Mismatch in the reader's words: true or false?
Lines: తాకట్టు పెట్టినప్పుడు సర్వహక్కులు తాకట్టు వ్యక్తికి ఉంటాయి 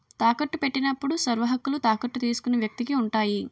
true